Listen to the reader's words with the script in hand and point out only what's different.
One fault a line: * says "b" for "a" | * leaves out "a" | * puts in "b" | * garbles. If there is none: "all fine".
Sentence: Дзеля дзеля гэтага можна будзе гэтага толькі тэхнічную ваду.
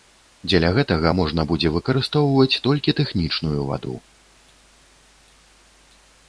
* leaves out "дзеля"
* says "выкарыстоўваць" for "гэтага"